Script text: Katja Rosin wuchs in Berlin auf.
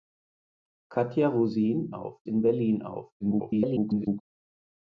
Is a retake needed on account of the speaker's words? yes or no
yes